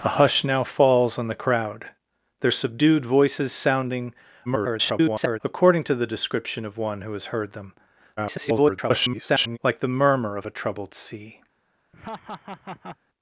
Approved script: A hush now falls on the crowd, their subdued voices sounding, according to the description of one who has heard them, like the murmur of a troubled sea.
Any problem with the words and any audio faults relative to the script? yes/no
yes